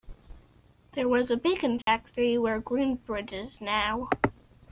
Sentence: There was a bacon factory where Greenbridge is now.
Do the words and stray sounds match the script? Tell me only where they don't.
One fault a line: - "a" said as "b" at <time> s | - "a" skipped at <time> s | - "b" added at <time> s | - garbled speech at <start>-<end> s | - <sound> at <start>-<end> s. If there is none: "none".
- dropout at 1.8-1.9 s